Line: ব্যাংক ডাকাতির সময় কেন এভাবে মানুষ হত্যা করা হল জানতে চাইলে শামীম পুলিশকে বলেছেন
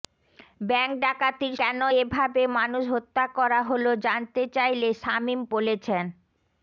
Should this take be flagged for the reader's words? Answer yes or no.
yes